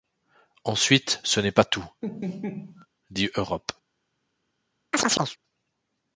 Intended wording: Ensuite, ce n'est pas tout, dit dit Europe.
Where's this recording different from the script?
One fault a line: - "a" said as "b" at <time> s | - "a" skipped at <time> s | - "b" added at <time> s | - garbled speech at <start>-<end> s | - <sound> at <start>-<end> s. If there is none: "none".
- laugh at 2.0-2.9 s
- "dit" skipped at 3.3 s
- chirp at 4.9-5.4 s